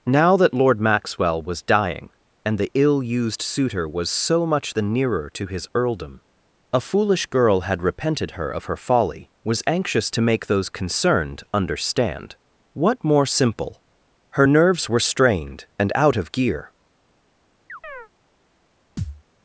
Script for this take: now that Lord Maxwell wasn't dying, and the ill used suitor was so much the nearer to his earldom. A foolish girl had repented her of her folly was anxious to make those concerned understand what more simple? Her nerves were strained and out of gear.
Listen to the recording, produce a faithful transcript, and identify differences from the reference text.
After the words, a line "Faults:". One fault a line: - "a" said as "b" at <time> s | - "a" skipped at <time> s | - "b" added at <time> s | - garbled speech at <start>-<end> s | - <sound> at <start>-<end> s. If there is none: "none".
now that Lord Maxwell was dying, and the ill used suitor was so much the nearer to his earldom. A foolish girl had repented her of her folly was anxious to make those concerned understand what more simple? Her nerves were strained and out of gear.
Faults:
- "wasn't" said as "was" at 1.4 s
- chirp at 17.7-18.1 s
- thud at 19.0-19.2 s